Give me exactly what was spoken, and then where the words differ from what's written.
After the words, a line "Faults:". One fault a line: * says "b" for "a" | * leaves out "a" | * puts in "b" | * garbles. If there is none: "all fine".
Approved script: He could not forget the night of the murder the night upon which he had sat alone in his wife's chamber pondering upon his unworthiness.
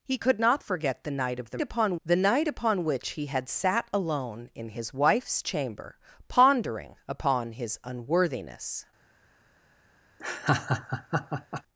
He could not forget the night of the upon the night upon which he had sat alone in his wife's chamber pondering upon his unworthiness.
Faults:
* says "upon" for "murder"